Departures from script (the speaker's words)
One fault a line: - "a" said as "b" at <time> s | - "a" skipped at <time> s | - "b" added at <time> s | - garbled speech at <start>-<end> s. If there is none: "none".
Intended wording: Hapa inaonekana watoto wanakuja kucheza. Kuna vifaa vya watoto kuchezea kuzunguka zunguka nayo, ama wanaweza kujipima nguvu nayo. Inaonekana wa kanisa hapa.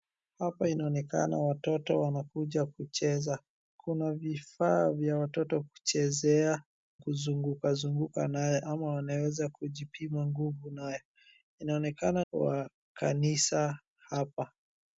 none